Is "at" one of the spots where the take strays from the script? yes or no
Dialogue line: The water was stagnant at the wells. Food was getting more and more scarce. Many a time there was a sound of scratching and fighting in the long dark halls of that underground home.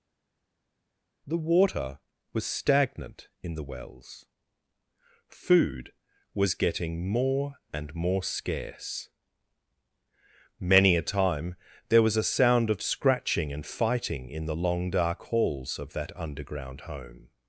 yes